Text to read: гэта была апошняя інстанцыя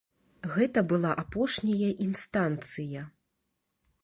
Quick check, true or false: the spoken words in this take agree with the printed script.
true